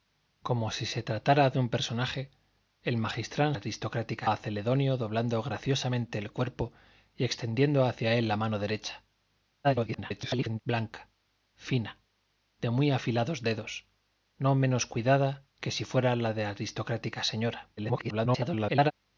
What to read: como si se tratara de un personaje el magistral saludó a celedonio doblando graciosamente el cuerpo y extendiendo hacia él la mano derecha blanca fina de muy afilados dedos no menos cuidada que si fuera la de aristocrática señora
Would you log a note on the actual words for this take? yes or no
yes